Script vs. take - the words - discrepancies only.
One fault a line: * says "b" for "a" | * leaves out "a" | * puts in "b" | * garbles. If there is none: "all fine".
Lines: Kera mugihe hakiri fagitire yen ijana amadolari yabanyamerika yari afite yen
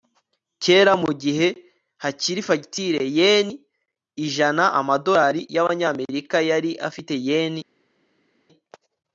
all fine